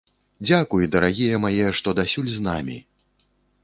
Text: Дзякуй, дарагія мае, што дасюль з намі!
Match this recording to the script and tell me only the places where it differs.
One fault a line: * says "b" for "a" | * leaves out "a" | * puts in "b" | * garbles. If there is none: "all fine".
all fine